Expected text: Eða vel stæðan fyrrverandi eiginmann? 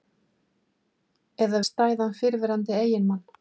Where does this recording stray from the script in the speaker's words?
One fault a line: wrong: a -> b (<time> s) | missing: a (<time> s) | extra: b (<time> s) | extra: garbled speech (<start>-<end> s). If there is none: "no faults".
missing: vel (1.6 s)